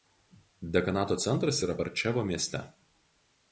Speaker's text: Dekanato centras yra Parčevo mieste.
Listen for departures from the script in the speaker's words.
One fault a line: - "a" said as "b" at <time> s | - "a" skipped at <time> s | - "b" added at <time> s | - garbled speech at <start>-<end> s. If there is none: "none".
none